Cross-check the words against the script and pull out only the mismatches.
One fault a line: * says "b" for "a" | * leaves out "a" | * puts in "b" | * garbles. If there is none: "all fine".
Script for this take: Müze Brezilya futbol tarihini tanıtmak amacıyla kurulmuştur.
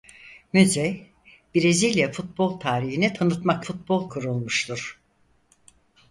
* says "futbol" for "amacıyla"